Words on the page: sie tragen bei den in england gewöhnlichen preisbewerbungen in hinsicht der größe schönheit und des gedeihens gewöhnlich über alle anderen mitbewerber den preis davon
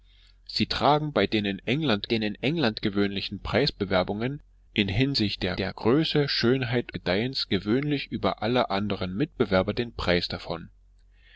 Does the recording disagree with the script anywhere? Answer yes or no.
yes